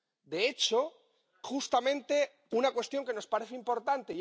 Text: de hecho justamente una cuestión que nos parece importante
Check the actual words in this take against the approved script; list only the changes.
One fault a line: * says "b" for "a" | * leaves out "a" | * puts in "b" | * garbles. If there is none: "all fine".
all fine